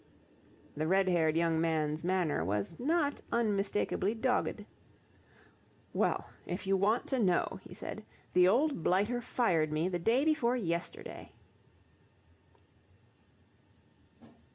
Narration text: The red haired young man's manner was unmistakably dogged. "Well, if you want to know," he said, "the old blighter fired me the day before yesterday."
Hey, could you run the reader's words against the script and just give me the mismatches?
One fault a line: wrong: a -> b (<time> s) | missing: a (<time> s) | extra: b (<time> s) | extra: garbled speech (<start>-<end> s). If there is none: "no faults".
extra: not (2.8 s)